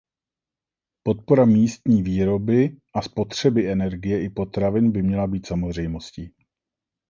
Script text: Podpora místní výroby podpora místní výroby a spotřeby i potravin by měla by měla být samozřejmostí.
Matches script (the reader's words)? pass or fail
fail